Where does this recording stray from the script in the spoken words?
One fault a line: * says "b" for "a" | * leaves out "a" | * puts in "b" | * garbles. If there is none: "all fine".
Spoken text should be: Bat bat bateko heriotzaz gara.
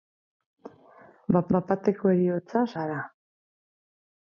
all fine